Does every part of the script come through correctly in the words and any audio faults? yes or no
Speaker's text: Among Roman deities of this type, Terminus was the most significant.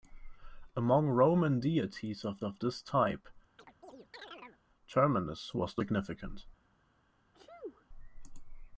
no